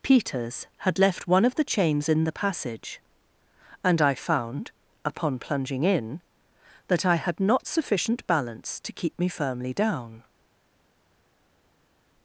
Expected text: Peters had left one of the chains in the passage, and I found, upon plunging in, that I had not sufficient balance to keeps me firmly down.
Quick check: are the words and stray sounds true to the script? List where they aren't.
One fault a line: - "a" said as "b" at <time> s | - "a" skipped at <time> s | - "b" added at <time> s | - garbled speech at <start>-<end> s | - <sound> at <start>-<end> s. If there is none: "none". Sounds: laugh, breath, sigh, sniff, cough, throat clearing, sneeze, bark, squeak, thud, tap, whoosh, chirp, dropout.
- "keeps" said as "keep" at 8.9 s